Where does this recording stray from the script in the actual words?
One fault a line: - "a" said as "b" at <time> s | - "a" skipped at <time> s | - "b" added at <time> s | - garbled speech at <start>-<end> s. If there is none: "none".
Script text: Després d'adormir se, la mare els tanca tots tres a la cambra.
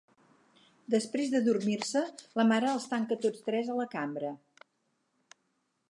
none